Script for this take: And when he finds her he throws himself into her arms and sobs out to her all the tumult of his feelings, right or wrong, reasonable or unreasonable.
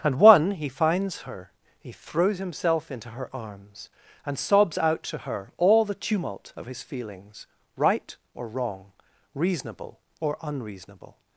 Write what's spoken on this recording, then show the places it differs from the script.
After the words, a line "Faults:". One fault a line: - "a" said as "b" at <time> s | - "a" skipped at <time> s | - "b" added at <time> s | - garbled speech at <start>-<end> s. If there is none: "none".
And one he finds her he throws himself into her arms and sobs out to her all the tumult of his feelings, right or wrong, reasonable or unreasonable.
Faults:
- "when" said as "one" at 0.2 s